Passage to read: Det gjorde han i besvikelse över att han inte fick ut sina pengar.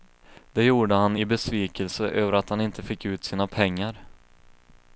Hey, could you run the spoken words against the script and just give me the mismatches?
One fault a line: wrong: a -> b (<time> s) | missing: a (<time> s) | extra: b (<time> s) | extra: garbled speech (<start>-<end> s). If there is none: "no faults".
no faults